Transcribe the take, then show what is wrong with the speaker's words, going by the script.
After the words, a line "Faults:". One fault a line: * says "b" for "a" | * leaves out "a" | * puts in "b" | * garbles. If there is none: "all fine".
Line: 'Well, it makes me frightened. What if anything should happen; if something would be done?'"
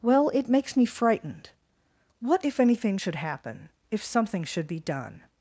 'Well, it makes me frightened. What if anything should happen; if something should be done?'"
Faults:
* says "should" for "would"